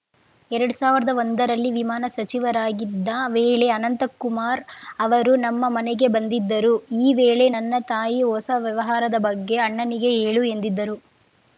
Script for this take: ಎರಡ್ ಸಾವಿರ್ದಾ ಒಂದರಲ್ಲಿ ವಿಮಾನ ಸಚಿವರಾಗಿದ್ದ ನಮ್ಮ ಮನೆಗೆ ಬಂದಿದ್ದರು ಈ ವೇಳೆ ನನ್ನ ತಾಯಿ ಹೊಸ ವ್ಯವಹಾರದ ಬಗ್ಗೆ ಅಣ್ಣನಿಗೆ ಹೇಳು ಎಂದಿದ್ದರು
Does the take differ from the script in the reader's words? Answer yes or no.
yes